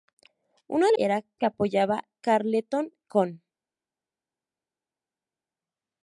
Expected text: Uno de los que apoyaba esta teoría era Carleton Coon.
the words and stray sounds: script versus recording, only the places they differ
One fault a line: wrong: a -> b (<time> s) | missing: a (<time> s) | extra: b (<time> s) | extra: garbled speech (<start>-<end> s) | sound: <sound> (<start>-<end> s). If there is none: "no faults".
wrong: los -> era (1.0 s)
missing: esta teoría era (2.1 s)